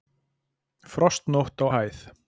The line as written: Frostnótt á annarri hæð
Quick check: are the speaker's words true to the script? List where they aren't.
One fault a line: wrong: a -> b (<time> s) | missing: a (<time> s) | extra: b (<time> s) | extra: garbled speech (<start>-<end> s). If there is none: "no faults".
missing: annarri (1.7 s)